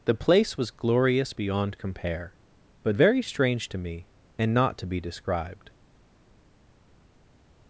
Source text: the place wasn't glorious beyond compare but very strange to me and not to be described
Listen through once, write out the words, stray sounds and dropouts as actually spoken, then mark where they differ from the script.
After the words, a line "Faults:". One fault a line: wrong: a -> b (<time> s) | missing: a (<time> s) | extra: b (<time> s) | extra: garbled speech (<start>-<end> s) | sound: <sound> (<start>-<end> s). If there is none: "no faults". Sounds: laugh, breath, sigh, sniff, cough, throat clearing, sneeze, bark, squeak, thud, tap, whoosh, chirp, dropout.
the place was glorious beyond compare but very strange to me and not to be described
Faults:
wrong: wasn't -> was (0.6 s)